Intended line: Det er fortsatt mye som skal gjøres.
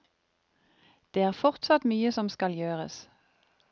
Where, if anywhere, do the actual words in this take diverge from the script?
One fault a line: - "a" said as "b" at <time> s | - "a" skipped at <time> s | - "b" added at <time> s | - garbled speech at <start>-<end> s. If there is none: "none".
none